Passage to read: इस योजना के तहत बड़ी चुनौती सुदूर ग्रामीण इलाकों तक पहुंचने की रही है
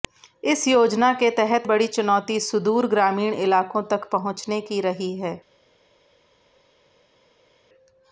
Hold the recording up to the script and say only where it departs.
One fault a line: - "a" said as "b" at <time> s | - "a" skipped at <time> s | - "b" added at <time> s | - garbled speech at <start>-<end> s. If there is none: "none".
none